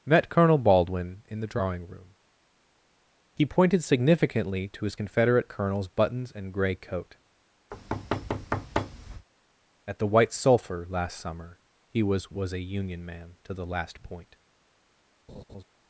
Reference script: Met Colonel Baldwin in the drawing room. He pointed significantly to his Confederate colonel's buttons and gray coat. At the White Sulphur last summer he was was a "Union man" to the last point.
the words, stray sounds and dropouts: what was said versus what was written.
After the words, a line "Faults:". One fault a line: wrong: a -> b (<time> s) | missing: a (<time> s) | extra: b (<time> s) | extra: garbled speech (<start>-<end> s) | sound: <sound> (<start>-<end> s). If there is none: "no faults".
Met Colonel Baldwin in the drawing room. He pointed significantly to his Confederate colonel's buttons and gray coat. At the White Sulphur last summer he was was a "Union man" to the last point.
Faults:
sound: thud (7.7-9.3 s)
sound: laugh (15.3-15.6 s)